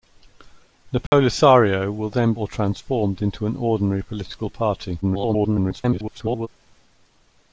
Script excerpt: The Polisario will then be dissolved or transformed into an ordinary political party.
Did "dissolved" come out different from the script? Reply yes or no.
yes